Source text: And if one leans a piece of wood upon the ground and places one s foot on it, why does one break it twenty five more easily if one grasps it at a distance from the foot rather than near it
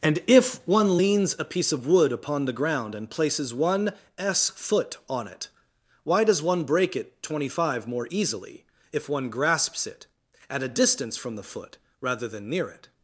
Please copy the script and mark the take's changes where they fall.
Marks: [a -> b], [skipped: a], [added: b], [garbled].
And if one leans a piece of wood upon the ground and places one s foot on it, why does one break it twenty five more easily if one grasps it at a distance from the foot rather than near it